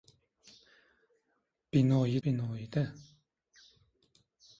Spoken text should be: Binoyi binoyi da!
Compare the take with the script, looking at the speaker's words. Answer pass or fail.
pass